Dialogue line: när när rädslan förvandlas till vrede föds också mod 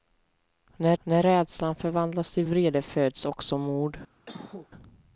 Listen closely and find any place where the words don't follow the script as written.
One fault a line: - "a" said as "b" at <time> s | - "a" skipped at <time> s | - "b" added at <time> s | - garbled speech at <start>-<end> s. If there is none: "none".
none